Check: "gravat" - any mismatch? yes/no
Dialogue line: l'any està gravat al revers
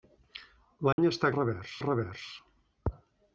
yes